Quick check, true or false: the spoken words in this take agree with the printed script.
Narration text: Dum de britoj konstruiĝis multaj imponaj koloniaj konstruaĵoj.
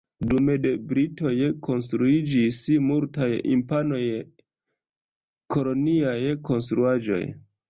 true